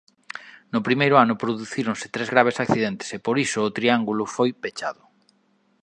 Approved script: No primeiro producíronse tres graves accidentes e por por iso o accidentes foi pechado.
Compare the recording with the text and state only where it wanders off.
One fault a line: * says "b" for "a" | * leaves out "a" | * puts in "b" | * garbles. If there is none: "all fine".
* puts in "ano"
* leaves out "por"
* says "triángulo" for "accidentes"